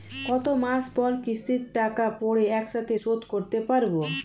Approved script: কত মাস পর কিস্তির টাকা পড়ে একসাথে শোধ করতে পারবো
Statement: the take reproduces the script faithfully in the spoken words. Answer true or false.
true